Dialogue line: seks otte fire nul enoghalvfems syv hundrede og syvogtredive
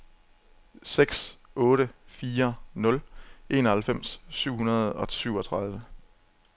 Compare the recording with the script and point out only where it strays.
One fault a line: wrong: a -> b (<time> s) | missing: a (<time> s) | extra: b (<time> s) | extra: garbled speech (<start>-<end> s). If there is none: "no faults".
no faults